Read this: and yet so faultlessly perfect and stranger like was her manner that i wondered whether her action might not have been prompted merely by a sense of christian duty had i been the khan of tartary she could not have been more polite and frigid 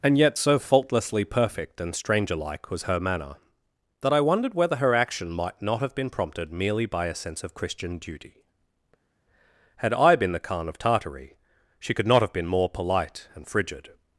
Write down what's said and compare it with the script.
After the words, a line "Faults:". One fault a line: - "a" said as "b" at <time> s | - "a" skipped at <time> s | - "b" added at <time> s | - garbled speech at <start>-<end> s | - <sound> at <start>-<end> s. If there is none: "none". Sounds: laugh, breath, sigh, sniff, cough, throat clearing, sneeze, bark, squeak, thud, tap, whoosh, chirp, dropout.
and yet so faultlessly perfect and stranger like was her manner that i wondered whether her action might not have been prompted merely by a sense of christian duty had i been the khan of tartary she could not have been more polite and frigid
Faults:
none